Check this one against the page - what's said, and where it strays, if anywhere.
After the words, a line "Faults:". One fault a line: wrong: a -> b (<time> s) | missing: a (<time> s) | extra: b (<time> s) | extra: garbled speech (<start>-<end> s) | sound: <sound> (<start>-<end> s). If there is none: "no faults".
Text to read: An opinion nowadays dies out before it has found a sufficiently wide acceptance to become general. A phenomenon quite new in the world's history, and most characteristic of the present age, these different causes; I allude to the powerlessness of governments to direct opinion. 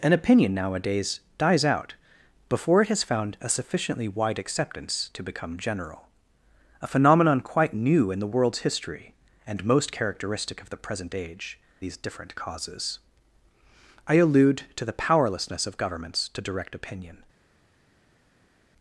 An opinion nowadays dies out before it has found a sufficiently wide acceptance to become general. A phenomenon quite new in the world's history, and most characteristic of the present age, these different causes; I allude to the powerlessness of governments to direct opinion.
Faults:
no faults